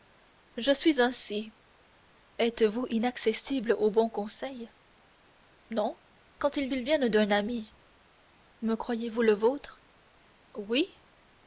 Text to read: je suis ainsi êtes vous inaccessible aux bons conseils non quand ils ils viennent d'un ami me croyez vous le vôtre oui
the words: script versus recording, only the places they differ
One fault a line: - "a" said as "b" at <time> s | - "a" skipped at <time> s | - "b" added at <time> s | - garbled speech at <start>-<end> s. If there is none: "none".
none